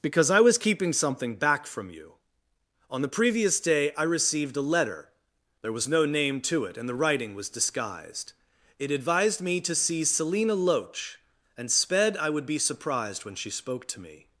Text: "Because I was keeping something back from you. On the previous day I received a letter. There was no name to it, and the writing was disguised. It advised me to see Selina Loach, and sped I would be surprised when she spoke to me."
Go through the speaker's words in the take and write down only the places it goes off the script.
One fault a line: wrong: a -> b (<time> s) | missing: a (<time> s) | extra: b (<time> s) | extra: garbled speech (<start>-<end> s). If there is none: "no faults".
no faults